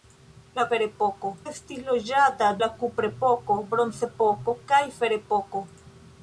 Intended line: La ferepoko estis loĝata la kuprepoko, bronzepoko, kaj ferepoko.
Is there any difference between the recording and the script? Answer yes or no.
no